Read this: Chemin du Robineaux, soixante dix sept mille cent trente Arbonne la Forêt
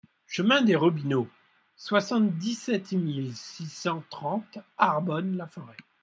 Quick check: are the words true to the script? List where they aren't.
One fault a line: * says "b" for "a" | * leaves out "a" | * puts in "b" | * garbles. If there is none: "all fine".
* says "des" for "du"
* puts in "six"